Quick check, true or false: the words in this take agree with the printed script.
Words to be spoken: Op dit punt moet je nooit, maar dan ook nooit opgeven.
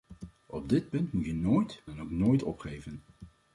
false